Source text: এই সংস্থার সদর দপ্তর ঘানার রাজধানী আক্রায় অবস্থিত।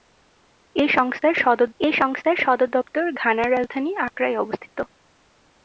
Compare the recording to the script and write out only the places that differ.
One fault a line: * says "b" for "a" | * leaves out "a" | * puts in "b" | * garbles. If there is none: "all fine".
* puts in "এই সংস্থার সদর"